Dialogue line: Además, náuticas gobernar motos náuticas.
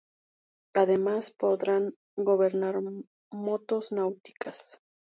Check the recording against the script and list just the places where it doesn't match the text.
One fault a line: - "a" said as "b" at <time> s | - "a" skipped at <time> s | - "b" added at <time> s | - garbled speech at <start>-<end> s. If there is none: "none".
- "náuticas" said as "podrán" at 1.4 s